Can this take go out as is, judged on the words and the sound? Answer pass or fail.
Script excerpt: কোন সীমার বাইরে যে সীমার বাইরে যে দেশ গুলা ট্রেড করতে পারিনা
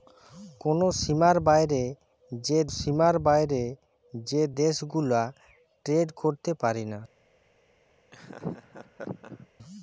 fail